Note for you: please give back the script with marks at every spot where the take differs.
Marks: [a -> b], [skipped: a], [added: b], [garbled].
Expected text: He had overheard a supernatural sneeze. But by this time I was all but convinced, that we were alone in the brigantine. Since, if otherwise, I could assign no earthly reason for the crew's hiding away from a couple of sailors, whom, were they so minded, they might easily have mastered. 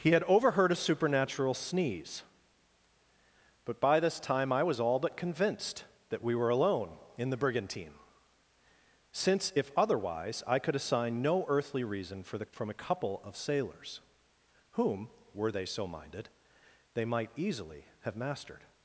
He had overheard a supernatural sneeze. But by this time I was all but convinced, that we were alone in the brigantine. Since, if otherwise, I could assign no earthly reason for the [skipped: crew's hiding away] from a couple of sailors, whom, were they so minded, they might easily have mastered.